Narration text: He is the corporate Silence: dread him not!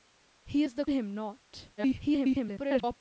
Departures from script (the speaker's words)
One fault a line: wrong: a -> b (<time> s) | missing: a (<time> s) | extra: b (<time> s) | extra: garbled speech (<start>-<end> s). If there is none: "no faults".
missing: corporate Silence dread (0.8 s)
extra: garbled speech (1.8-3.0 s)